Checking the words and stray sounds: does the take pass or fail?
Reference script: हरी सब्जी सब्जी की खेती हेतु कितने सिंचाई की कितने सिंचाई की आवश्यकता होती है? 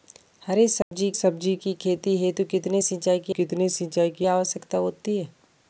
fail